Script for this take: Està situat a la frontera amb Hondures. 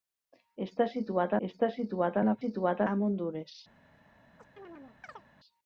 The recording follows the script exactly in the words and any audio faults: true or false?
false